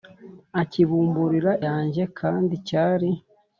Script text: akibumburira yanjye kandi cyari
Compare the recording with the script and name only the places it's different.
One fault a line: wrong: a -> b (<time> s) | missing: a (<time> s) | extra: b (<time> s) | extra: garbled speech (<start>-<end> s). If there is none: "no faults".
no faults